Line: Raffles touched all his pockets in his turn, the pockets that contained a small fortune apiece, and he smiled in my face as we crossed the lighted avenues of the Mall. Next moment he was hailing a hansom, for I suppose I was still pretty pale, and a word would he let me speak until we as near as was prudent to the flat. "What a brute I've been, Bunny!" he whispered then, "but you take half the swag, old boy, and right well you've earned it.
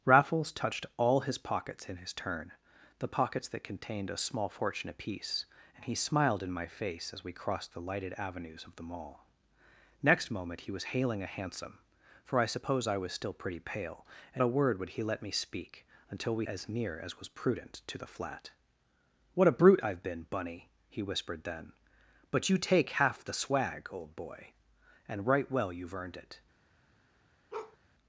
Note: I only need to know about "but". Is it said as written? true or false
true